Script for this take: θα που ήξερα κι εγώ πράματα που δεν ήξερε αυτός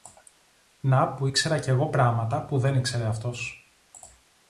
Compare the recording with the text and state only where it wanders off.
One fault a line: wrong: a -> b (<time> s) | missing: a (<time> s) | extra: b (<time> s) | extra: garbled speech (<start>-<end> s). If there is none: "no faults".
wrong: θα -> να (0.8 s)